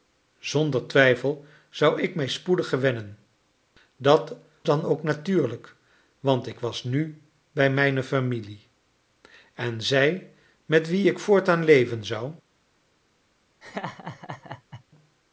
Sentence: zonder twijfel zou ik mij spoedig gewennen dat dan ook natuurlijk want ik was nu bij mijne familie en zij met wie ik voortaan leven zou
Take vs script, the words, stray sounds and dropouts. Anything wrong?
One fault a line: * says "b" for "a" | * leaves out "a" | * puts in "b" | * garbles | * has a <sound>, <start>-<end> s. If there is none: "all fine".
* has a laugh, 13.6-14.8 s